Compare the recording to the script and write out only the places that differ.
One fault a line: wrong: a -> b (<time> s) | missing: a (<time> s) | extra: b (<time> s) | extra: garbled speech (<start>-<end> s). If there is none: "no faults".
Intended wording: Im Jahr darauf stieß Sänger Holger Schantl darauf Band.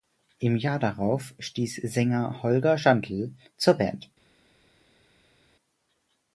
wrong: darauf -> zur (3.6 s)